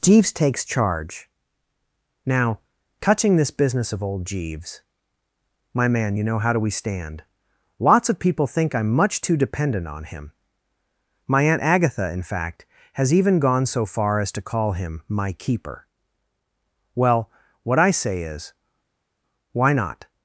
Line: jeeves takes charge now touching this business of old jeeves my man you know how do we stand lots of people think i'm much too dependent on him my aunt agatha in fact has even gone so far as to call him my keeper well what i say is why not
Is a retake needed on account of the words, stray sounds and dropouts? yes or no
no